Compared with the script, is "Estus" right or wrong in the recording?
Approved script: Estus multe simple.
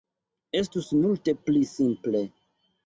right